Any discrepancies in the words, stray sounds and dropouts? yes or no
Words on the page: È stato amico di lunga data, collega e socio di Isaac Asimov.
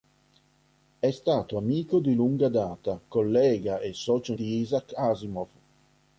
no